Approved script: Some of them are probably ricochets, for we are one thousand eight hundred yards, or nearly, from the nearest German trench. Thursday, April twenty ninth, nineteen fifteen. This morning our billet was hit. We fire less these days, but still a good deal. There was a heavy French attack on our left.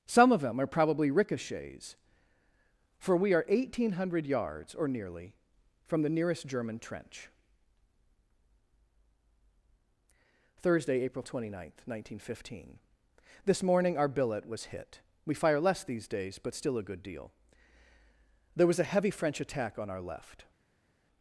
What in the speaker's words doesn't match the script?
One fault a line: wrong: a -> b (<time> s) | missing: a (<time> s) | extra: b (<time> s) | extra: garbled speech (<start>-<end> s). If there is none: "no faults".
no faults